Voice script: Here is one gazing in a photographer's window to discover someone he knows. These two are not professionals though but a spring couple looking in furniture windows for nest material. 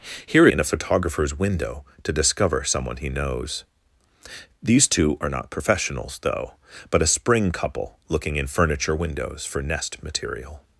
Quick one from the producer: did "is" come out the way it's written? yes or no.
no